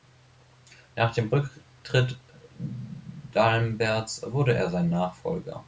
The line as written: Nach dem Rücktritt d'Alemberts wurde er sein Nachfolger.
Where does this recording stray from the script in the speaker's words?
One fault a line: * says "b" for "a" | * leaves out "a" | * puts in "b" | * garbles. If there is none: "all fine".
all fine